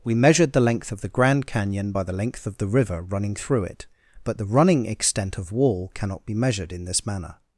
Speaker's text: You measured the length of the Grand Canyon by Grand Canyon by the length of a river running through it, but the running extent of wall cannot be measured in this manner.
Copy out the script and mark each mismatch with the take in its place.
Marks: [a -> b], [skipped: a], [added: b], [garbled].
[You -> We] measured the length of the Grand Canyon by [skipped: Grand Canyon by] the length of [a -> the] river running through it, but the running extent of wall cannot be measured in this manner.